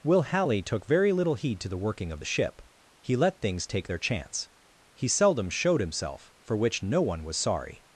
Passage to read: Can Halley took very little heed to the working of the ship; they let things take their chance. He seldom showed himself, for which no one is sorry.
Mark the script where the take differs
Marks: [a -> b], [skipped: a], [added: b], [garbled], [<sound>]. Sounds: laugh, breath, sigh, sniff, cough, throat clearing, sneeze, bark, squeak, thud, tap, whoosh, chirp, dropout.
[Can -> Will] Halley took very little heed to the working of the ship; [they -> he] let things take their chance. He seldom showed himself, for which no one [is -> was] sorry.